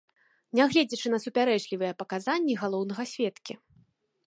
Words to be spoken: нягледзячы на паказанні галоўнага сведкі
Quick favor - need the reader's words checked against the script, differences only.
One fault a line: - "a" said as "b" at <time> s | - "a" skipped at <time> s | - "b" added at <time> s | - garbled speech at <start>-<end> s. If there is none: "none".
- "супярэчлівыя" added at 1.2 s